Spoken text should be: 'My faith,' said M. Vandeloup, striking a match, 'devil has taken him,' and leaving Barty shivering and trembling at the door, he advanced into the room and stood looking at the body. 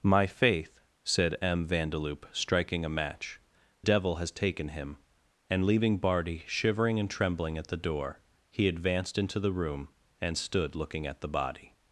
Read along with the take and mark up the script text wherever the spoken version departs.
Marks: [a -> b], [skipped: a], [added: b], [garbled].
'My faith,' said M. Vandeloup, striking a match, 'devil has taken him,' and leaving Barty shivering and trembling at the door, he advanced into the room and stood looking at the body.